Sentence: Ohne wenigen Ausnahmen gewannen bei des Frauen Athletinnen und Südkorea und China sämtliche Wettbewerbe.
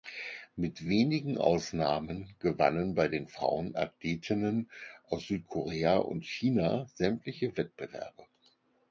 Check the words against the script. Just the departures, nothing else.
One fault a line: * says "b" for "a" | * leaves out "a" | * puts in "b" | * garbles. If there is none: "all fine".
* says "Mit" for "Ohne"
* says "den" for "des"
* says "aus" for "und"